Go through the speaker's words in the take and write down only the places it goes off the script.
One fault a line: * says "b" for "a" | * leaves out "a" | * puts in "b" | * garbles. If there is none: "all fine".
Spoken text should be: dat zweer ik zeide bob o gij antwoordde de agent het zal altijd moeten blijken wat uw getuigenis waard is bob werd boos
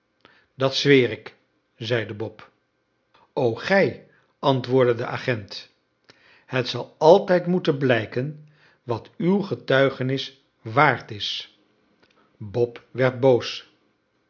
all fine